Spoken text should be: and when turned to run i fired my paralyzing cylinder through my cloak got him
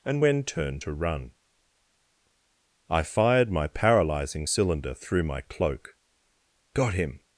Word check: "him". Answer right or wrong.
right